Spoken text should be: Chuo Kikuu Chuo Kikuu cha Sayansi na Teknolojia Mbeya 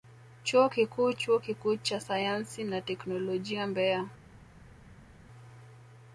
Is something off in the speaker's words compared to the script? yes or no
no